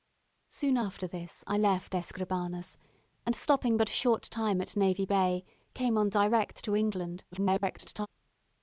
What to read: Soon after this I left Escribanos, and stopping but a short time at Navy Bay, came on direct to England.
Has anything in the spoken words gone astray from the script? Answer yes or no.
yes